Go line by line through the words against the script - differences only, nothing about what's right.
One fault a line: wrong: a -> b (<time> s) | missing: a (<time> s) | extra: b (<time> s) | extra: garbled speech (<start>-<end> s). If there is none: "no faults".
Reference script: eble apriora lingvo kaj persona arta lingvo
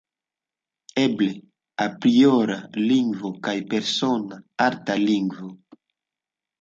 no faults